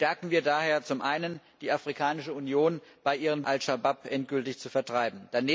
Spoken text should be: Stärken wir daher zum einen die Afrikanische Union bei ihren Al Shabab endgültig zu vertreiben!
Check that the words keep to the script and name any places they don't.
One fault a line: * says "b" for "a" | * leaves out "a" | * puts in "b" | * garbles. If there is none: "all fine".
all fine